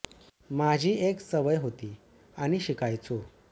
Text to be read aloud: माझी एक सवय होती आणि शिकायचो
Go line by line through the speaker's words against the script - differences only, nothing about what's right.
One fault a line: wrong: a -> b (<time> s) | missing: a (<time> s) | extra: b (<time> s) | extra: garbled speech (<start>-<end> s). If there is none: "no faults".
no faults